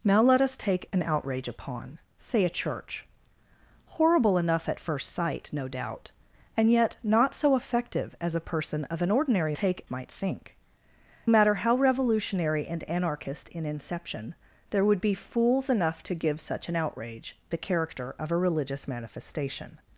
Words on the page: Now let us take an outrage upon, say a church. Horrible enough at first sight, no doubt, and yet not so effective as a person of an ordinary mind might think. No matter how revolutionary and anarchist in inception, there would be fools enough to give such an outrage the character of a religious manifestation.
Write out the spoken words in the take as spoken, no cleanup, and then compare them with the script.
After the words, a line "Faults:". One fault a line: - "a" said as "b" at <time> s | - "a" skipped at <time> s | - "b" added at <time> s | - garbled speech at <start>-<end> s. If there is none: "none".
Now let us take an outrage upon, say a church. Horrible enough at first sight, no doubt, and yet not so effective as a person of an ordinary take might think. Matter how revolutionary and anarchist in inception, there would be fools enough to give such an outrage the character of a religious manifestation.
Faults:
- "mind" said as "take" at 9.5 s
- "No" skipped at 10.5 s